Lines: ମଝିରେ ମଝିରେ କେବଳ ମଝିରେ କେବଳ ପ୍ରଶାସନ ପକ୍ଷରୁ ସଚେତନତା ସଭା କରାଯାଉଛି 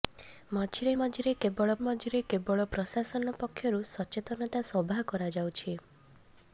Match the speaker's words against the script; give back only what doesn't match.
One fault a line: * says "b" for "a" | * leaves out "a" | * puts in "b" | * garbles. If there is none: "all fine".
all fine